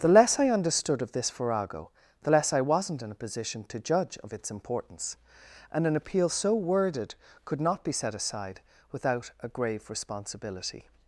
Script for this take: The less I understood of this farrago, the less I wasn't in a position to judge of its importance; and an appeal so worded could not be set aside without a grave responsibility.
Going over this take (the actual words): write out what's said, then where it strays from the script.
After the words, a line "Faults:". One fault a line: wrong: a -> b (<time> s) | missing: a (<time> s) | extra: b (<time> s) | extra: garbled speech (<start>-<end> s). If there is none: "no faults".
The less I understood of this farrago, the less I wasn't in a position to judge of its importance; and an appeal so worded could not be set aside without a grave responsibility.
Faults:
no faults